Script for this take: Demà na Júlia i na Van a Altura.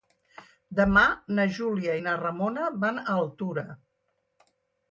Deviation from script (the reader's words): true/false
true